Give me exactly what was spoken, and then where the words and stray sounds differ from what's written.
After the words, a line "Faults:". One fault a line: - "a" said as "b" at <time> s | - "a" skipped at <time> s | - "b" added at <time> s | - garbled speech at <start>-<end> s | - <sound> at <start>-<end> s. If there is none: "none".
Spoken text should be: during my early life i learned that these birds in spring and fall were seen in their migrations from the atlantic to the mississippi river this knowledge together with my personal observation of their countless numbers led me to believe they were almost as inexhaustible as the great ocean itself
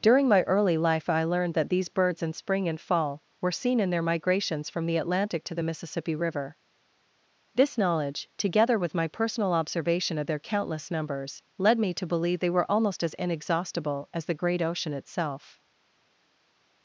during my early life i learned that these birds in spring and fall were seen in their migrations from the atlantic to the mississippi river this knowledge together with my personal observation of their countless numbers led me to believe they were almost as inexhaustible as the great ocean itself
Faults:
none